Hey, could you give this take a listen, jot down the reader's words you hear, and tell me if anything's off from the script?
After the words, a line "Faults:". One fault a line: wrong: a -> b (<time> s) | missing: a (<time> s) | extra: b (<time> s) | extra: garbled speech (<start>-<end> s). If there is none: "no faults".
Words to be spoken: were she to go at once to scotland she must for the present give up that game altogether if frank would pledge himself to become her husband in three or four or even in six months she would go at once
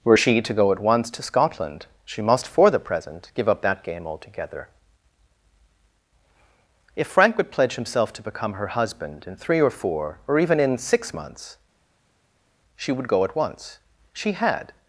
were she to go at once to scotland she must for the present give up that game altogether if frank would pledge himself to become her husband in three or four or even in six months she would go at once she had
Faults:
extra: she had (14.1 s)